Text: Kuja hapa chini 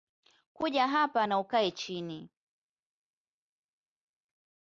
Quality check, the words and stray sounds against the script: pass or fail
fail